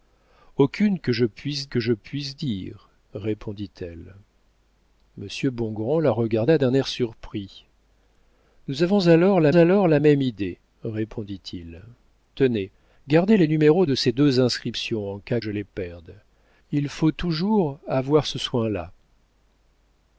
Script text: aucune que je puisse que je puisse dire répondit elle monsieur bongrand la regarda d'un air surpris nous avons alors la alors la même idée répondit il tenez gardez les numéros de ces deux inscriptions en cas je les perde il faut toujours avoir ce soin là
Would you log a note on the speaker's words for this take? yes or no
no